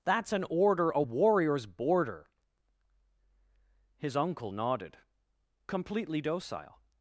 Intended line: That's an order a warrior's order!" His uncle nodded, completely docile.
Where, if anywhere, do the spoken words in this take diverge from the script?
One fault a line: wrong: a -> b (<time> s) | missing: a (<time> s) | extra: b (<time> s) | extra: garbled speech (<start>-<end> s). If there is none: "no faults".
wrong: order -> border (1.7 s)